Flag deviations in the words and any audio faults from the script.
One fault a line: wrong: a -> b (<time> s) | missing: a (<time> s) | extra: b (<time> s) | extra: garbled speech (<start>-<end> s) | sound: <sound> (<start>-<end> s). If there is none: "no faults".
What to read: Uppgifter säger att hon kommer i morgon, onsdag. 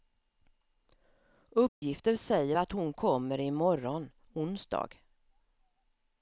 sound: dropout (1.7-1.8 s)